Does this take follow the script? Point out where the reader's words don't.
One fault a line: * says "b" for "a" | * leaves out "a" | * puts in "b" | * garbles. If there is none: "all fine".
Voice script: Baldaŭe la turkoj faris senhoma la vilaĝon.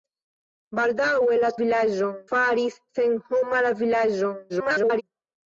* says "vilaĝon" for "turkoj"
* garbles